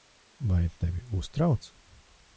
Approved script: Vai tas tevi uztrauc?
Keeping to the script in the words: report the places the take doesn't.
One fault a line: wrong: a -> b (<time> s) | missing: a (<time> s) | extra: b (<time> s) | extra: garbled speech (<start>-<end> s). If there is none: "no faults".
missing: tas (0.7 s)